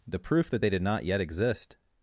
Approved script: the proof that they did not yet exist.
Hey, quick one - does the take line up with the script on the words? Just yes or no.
yes